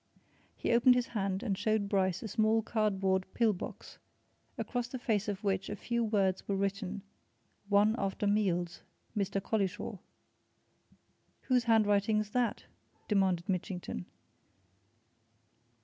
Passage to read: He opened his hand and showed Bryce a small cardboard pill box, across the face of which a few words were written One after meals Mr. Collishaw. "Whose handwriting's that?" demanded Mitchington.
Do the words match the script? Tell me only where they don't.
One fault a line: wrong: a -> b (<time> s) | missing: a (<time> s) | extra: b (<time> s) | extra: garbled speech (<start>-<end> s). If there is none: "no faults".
no faults